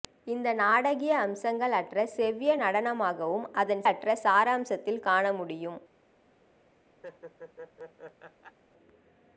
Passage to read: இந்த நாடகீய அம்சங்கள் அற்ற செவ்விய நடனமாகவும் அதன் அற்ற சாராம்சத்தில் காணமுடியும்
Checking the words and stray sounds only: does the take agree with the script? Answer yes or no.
no